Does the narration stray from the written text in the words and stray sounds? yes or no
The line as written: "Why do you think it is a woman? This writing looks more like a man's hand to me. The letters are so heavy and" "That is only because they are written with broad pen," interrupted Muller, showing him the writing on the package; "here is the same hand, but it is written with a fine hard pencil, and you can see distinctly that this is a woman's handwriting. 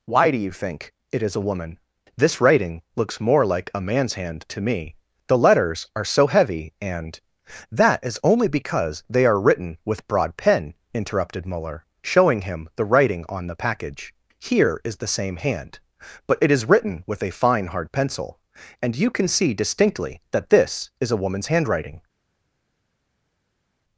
no